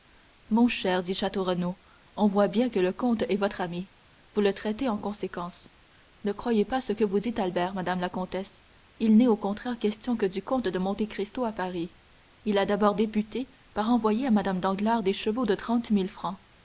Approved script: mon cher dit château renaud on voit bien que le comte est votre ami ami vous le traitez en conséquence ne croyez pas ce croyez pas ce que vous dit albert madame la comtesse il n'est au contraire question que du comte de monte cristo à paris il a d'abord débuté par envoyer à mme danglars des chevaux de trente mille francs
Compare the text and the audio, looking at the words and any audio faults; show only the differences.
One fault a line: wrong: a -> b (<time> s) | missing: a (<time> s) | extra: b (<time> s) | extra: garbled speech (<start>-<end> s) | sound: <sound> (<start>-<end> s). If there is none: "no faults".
missing: ami (3.9 s)
missing: croyez pas ce (6.9 s)